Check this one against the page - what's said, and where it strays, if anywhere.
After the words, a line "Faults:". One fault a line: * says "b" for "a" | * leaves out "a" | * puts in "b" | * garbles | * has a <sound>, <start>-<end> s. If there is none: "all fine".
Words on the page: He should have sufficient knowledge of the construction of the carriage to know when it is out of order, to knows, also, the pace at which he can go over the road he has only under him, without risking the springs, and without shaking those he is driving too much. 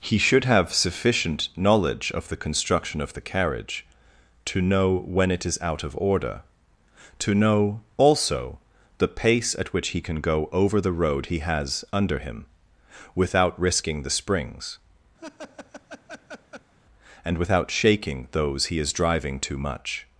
He should have sufficient knowledge of the construction of the carriage to know when it is out of order, to know, also, the pace at which he can go over the road he has under him, without risking the springs, and without shaking those he is driving too much.
Faults:
* says "know" for "knows"
* leaves out "only"
* has a laugh, 15.2-16.7 s